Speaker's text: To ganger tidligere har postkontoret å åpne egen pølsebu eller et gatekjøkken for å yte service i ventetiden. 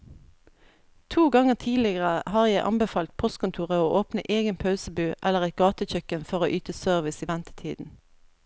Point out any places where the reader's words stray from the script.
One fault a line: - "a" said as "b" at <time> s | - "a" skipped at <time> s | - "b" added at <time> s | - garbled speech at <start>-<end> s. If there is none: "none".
- "jeg anbefalt" added at 2.5 s